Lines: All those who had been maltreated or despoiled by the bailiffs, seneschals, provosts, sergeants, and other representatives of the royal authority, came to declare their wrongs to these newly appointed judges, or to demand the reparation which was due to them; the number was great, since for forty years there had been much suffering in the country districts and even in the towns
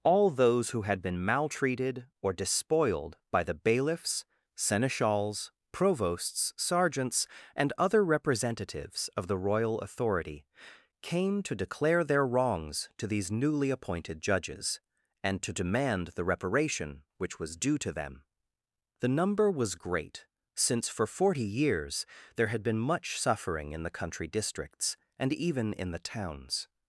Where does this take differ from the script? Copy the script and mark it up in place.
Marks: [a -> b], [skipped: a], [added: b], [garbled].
All those who had been maltreated or despoiled by the bailiffs, seneschals, provosts, sergeants, and other representatives of the royal authority, came to declare their wrongs to these newly appointed judges, [or -> and] to demand the reparation which was due to them; the number was great, since for forty years there had been much suffering in the country districts and even in the towns